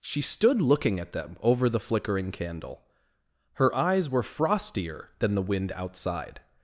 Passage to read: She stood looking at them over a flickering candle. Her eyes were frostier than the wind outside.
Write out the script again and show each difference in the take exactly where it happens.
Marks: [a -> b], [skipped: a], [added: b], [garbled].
She stood looking at them over [a -> the] flickering candle. Her eyes were frostier than the wind outside.